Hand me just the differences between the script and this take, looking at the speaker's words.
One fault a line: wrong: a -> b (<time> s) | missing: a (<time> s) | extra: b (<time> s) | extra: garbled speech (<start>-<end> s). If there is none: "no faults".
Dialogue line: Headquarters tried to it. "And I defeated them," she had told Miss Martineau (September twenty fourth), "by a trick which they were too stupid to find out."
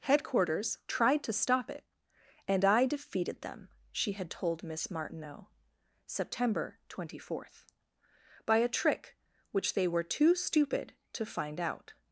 extra: stop (1.3 s)